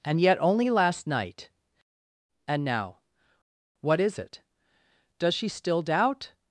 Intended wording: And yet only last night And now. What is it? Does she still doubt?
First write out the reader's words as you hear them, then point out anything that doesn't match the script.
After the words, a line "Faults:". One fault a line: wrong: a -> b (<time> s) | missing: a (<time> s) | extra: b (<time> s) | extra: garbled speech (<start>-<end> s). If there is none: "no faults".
And yet only last night And now. What is it? Does she still doubt?
Faults:
no faults